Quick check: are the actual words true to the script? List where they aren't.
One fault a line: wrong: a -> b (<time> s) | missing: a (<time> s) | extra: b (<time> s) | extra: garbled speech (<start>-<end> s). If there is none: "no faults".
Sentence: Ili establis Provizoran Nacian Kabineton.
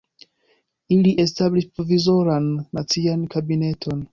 no faults